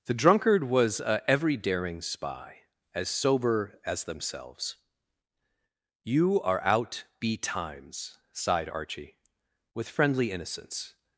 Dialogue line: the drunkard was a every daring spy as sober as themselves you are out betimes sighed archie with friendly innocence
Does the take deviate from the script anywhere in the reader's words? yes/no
no